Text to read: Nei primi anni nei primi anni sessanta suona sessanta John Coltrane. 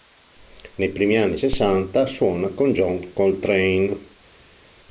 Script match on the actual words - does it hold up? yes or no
no